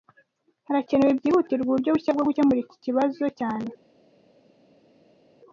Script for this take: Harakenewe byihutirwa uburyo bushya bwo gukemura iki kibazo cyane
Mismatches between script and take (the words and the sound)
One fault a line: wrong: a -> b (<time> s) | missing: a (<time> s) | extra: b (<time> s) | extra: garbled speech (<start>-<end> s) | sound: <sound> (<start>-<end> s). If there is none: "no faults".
no faults